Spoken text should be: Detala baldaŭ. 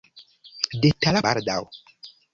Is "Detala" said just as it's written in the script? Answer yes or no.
yes